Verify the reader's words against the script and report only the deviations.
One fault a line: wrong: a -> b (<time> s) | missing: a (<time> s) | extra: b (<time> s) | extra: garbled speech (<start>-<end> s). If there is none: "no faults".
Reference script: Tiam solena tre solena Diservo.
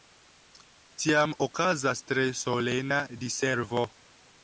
wrong: solena -> okazas (1.5 s)